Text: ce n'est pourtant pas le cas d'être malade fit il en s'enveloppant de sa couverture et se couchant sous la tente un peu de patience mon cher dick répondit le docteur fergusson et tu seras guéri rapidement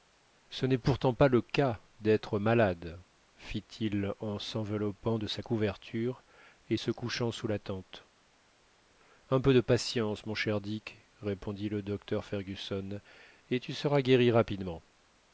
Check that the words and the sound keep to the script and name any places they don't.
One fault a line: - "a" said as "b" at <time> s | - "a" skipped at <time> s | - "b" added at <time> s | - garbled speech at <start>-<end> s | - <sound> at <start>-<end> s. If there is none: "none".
none